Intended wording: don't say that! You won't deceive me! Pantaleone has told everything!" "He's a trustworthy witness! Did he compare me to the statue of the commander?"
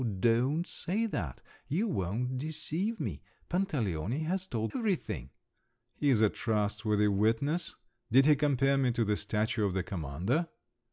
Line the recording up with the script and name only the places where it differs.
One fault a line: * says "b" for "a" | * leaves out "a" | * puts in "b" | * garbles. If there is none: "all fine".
all fine